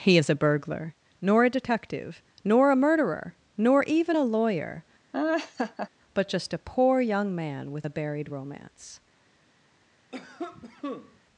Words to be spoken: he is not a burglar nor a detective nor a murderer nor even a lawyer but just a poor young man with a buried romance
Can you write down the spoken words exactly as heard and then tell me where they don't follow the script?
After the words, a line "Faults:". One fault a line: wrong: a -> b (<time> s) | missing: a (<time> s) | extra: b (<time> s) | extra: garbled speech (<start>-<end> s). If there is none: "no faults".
he is a burglar nor a detective nor a murderer nor even a lawyer but just a poor young man with a buried romance
Faults:
missing: not (0.3 s)